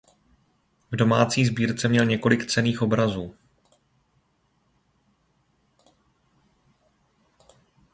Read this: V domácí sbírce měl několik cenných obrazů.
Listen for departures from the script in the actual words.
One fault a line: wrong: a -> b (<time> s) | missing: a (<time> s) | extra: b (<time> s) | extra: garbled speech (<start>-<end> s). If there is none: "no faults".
no faults